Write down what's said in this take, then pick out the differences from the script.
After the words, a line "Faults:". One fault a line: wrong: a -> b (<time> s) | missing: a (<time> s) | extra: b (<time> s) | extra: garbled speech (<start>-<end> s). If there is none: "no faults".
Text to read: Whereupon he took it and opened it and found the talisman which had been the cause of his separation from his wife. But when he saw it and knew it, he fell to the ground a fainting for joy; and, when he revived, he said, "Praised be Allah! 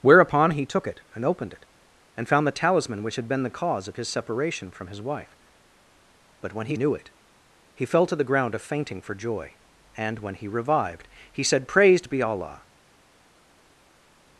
Whereupon he took it and opened it and found the talisman which had been the cause of his separation from his wife. But when he knew it, he fell to the ground a fainting for joy; and, when he revived, he said, "Praised be Allah!
Faults:
missing: saw it and (6.8 s)